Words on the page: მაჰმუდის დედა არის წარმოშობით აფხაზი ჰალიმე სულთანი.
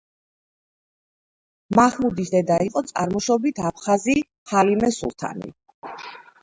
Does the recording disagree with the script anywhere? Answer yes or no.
yes